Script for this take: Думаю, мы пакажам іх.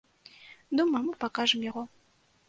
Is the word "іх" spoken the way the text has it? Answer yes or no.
no